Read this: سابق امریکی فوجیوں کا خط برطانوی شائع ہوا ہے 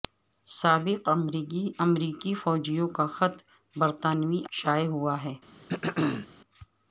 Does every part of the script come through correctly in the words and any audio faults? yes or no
no